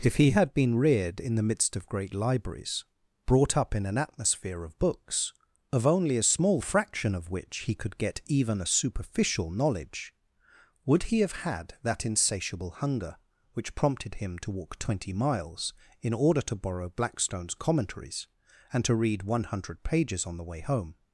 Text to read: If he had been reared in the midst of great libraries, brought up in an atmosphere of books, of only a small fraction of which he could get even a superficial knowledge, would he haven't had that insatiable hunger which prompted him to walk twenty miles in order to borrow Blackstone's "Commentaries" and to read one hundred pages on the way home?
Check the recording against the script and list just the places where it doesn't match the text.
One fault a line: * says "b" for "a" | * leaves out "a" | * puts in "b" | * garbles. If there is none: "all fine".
* says "have" for "haven't"